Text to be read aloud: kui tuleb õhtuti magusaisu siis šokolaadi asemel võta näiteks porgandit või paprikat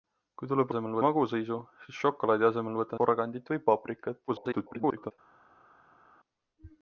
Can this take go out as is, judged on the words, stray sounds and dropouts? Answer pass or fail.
fail